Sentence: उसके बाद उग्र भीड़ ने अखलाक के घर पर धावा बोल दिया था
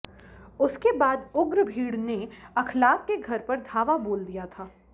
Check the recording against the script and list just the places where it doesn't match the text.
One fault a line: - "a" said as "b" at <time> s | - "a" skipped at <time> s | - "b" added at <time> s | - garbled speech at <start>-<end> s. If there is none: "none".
none